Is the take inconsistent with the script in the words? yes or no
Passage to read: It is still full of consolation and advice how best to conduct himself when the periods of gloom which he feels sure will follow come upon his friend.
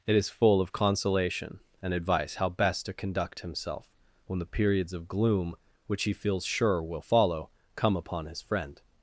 yes